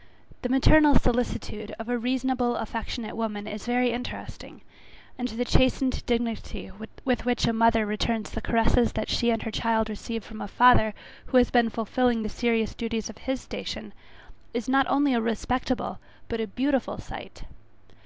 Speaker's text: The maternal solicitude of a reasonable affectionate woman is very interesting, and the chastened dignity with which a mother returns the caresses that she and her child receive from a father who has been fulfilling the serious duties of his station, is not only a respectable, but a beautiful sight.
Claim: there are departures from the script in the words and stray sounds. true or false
false